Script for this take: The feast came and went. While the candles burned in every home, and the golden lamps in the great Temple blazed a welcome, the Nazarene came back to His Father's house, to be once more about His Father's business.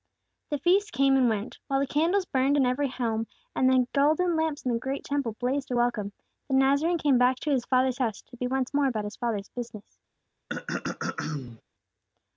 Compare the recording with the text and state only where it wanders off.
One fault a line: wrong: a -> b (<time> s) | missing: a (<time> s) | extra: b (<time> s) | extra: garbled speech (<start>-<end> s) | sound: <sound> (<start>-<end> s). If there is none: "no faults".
sound: throat clearing (10.5-11.6 s)